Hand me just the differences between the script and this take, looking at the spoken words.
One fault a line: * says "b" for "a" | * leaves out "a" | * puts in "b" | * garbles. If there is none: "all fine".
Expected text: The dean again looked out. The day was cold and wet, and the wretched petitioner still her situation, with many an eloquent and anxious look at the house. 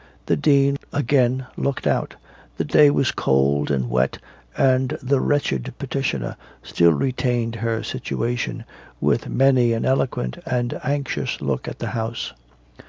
* puts in "retained"